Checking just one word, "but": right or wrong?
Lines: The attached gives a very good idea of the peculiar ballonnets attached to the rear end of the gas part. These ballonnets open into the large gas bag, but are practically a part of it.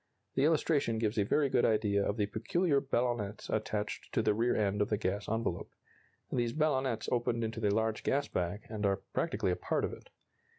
wrong